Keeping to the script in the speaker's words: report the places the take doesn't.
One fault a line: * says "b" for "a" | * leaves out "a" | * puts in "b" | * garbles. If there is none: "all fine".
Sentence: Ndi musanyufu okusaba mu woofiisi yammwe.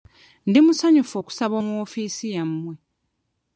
all fine